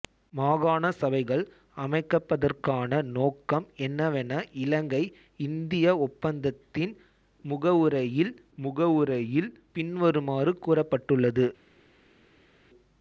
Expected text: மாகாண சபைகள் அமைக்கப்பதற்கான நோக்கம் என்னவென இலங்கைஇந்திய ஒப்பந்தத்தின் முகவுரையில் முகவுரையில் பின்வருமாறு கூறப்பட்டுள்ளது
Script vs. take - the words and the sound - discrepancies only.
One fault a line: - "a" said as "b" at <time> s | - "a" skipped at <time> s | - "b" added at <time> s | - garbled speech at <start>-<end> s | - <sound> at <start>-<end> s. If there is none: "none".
none